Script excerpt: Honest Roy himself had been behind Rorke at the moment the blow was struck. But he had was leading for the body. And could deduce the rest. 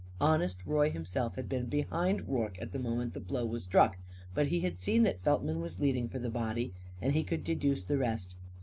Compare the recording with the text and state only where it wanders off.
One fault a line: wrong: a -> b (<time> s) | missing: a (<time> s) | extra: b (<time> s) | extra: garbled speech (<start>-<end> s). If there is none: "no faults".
extra: seen that Feltman (4.8 s)
extra: he (7.1 s)